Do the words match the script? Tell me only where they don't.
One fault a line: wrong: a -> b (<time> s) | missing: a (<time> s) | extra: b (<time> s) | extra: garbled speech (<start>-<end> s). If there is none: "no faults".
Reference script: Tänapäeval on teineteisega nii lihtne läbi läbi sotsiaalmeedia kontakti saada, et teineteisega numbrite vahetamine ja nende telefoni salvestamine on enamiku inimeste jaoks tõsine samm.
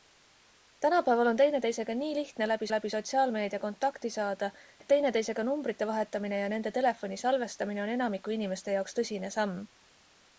no faults